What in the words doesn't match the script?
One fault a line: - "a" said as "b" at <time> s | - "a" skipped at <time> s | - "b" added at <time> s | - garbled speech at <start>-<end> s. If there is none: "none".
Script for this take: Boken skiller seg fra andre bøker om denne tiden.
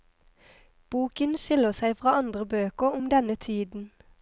none